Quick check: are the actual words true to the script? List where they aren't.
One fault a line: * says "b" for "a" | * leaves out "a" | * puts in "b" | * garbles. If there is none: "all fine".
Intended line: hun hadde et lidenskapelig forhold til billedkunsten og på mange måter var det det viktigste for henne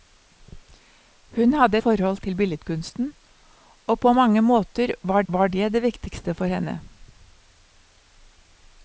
* leaves out "et lidenskapelig"
* puts in "var"